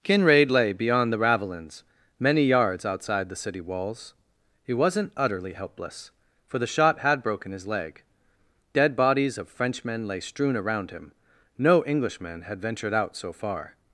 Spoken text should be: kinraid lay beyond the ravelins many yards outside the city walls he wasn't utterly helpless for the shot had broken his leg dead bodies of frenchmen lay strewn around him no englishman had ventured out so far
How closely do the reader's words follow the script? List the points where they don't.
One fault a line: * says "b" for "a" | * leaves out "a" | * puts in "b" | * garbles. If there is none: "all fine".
all fine